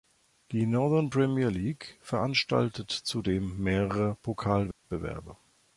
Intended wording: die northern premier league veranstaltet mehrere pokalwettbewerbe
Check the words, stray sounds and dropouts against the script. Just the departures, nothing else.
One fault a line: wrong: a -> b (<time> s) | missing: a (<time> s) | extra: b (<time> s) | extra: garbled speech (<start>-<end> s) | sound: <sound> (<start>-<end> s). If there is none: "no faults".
extra: zudem (2.9 s)
sound: dropout (4.7-4.8 s)